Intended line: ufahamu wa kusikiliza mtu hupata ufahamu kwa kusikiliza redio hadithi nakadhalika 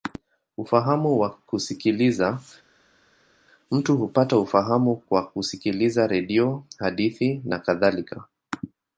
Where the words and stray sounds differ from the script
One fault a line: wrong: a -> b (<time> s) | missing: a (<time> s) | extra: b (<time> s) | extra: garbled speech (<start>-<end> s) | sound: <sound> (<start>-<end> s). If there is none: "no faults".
no faults